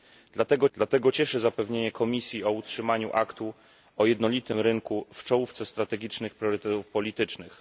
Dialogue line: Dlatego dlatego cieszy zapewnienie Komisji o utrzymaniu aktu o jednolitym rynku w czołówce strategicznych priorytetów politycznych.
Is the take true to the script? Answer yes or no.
yes